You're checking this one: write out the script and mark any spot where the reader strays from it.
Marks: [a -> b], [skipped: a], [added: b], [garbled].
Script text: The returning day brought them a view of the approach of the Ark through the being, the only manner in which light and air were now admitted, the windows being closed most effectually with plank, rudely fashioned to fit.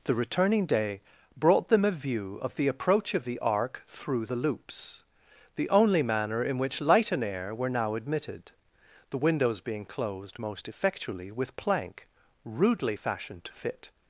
The returning day brought them a view of the approach of the Ark through the [being, -> loops] the only manner in which light and air were now admitted, the windows being closed most effectually with plank, rudely fashioned to fit.